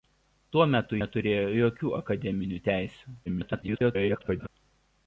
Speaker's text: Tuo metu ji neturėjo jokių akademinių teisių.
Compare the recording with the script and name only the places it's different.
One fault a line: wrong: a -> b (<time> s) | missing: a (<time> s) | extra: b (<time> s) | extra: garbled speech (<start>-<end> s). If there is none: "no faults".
missing: ji (1.0 s)
extra: garbled speech (3.3-4.5 s)